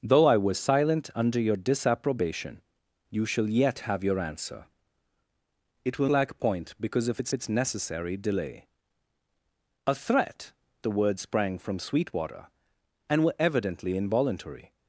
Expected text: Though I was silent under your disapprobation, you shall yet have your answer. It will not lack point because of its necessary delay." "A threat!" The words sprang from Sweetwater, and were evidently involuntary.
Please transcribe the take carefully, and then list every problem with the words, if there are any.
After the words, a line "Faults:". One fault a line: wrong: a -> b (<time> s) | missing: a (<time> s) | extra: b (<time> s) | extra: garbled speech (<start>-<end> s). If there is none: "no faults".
Though I was silent under your disapprobation, you shall yet have your answer. It will lack point because of its its necessary delay." "A threat!" The words sprang from Sweetwater, and were evidently involuntary.
Faults:
missing: not (6.1 s)
extra: its (7.3 s)